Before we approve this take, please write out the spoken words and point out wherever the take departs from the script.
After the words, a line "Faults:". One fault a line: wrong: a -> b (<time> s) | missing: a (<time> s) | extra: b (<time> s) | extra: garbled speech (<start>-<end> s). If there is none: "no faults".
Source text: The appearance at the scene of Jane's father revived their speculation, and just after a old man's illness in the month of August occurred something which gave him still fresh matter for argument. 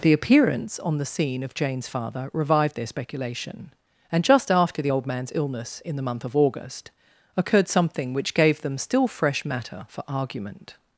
The appearance on the scene of Jane's father revived their speculation, and just after the old man's illness in the month of August occurred something which gave them still fresh matter for argument.
Faults:
wrong: at -> on (0.8 s)
wrong: a -> the (4.8 s)
wrong: him -> them (8.6 s)